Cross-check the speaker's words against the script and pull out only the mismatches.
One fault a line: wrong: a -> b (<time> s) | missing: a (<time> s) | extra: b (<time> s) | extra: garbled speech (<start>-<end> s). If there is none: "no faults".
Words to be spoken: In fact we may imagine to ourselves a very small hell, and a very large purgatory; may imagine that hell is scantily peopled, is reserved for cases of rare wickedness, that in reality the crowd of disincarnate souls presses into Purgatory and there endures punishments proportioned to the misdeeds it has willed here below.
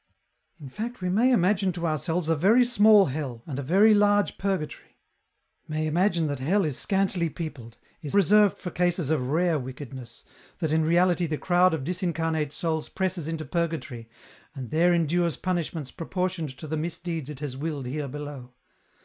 no faults